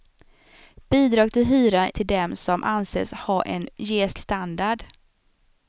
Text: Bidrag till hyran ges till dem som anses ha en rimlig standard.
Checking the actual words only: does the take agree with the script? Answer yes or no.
no